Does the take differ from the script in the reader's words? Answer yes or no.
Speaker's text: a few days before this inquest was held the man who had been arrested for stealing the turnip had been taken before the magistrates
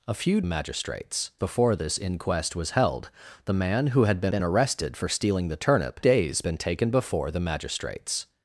yes